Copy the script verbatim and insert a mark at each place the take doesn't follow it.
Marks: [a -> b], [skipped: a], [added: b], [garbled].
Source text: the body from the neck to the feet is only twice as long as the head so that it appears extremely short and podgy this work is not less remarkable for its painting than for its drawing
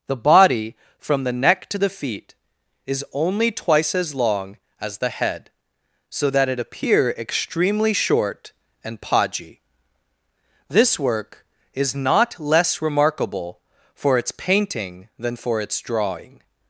the body from the neck to the feet is only twice as long as the head so that it [appears -> appear] extremely short and podgy this work is not less remarkable for its painting than for its drawing